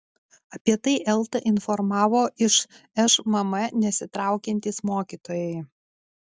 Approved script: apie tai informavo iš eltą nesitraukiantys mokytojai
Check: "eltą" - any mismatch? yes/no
yes